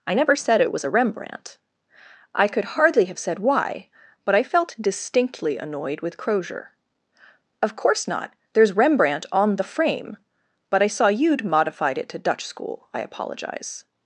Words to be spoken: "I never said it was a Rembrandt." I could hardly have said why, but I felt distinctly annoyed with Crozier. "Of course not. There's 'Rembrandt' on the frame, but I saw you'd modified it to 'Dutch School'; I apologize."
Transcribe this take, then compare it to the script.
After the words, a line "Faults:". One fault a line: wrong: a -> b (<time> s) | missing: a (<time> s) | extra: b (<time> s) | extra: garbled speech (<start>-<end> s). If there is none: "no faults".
"I never said it was a Rembrandt." I could hardly have said why, but I felt distinctly annoyed with Crozier. "Of course not. There's 'Rembrandt' on the frame, but I saw you'd modified it to 'Dutch School'; I apologize."
Faults:
no faults